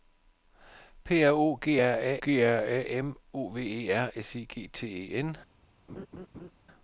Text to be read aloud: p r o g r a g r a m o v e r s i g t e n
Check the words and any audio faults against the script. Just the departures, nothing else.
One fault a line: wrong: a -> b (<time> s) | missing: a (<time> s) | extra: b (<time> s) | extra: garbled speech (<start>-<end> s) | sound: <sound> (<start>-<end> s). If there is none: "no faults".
sound: laugh (5.9-6.5 s)